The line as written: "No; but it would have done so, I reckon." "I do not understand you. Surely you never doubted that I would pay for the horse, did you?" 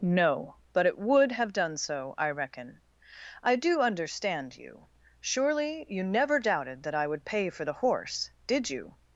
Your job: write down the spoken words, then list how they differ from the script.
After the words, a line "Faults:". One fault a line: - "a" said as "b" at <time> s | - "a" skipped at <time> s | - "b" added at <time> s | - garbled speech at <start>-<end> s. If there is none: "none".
"No; but it would have done so, I reckon." "I do understand you. Surely you never doubted that I would pay for the horse, did you?"
Faults:
- "not" skipped at 3.8 s